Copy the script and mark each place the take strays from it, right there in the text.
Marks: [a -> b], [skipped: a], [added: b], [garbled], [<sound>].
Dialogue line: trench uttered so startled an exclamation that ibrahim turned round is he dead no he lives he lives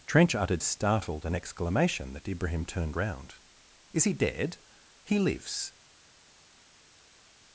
trench uttered [skipped: so] startled an exclamation that ibrahim turned round is he dead [skipped: no he lives] he lives